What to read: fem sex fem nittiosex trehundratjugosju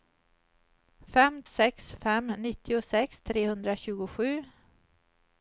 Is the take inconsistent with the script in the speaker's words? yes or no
no